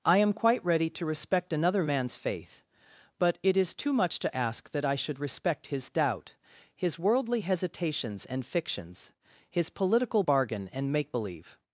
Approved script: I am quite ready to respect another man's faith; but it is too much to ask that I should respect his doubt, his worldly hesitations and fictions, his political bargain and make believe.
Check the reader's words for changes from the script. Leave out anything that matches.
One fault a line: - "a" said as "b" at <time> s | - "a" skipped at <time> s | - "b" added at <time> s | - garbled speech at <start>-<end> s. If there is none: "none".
none